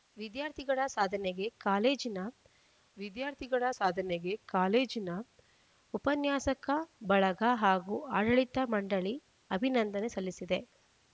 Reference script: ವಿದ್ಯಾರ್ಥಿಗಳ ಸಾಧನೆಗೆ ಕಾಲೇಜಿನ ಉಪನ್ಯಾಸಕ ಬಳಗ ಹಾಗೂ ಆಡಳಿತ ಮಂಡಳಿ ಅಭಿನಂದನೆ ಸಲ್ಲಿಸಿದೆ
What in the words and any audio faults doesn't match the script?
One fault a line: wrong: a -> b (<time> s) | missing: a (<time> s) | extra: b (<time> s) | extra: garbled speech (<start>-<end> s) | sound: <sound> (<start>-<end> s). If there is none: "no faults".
extra: ವಿದ್ಯಾರ್ಥಿಗಳ ಸಾಧನೆಗೆ ಕಾಲೇಜಿನ (3.0 s)